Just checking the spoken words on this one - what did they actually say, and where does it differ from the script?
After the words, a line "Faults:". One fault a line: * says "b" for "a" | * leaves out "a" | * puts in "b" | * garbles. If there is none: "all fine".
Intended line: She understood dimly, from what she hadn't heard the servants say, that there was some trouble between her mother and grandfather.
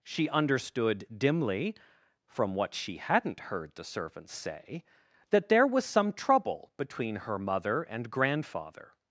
She understood dimly, from what she hadn't heard the servants say, that there was some trouble between her mother and grandfather.
Faults:
all fine